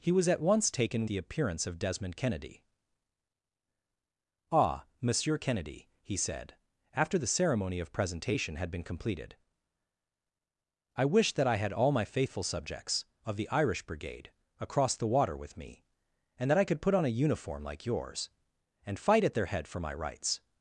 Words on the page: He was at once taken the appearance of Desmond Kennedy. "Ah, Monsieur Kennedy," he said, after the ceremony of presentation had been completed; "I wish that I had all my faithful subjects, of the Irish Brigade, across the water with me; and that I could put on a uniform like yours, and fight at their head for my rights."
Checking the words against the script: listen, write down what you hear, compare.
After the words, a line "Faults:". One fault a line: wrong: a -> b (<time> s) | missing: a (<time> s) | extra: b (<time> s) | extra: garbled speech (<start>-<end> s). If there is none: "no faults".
He was at once taken the appearance of Desmond Kennedy. "Ah, Monsieur Kennedy," he said, after the ceremony of presentation had been completed; "I wish that I had all my faithful subjects, of the Irish Brigade, across the water with me; and that I could put on a uniform like yours, and fight at their head for my rights."
Faults:
no faults